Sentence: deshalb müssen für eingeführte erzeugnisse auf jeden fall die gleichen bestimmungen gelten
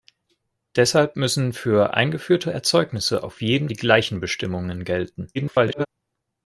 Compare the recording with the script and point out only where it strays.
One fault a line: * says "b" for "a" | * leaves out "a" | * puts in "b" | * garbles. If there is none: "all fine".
* leaves out "fall"
* garbles